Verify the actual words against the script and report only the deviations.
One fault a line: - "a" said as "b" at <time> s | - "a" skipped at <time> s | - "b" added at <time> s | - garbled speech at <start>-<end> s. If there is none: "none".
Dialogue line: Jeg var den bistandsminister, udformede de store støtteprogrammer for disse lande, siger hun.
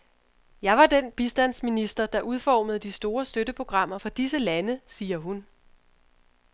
- "der" added at 2.0 s